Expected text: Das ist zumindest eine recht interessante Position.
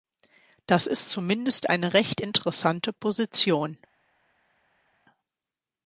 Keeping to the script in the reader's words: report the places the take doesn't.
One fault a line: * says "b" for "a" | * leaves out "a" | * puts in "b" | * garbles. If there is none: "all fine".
all fine